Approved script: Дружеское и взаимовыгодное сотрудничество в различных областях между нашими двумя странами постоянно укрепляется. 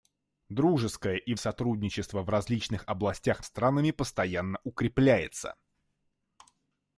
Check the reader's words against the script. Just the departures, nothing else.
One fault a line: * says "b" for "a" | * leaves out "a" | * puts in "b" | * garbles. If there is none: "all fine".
* leaves out "взаимовыгодное"
* leaves out "между нашими двумя"